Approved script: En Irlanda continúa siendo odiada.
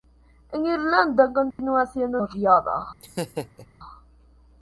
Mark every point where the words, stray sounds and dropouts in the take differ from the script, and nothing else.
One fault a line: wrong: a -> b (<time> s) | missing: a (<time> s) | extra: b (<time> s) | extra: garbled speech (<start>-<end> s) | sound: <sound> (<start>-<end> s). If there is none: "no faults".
sound: dropout (1.5-1.6 s)
sound: laugh (3.0-3.7 s)